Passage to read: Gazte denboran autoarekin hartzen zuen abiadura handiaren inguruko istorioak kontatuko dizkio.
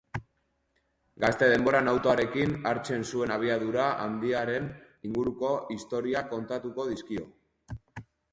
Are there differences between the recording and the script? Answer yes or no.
no